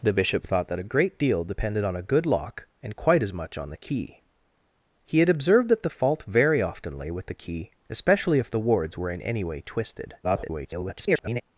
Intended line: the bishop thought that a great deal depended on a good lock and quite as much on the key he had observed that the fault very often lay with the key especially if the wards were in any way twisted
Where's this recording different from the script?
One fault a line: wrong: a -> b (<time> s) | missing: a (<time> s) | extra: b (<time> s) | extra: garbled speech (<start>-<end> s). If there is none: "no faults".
extra: garbled speech (10.2-11.4 s)